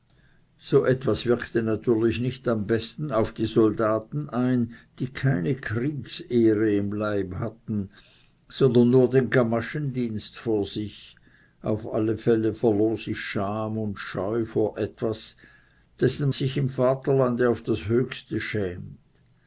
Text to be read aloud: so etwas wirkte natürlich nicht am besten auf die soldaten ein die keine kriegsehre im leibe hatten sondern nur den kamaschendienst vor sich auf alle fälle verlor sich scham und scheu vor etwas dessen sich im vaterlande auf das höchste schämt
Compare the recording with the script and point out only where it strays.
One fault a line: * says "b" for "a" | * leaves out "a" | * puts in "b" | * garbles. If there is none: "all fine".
all fine